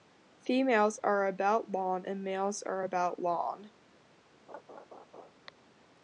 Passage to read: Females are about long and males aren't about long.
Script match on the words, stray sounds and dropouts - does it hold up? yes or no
no